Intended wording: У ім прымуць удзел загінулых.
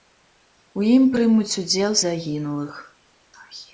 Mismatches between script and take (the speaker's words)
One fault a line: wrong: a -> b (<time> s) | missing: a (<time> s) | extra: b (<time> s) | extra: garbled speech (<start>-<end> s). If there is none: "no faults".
no faults